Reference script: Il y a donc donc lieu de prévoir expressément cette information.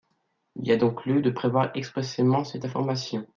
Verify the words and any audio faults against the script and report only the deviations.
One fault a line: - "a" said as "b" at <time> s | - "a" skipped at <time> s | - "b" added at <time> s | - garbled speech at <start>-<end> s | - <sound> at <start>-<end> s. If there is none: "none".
- "donc" skipped at 1.1 s